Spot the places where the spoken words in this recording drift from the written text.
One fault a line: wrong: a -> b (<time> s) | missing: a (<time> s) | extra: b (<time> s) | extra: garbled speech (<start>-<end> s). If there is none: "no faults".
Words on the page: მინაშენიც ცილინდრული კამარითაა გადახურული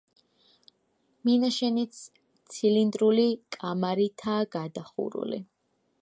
no faults